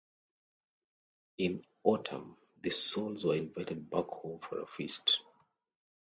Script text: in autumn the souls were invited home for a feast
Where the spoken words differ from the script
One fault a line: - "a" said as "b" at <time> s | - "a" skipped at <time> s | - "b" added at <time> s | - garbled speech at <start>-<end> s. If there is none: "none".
- "back" added at 3.9 s